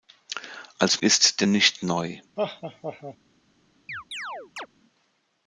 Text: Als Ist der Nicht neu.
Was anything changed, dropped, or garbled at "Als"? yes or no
no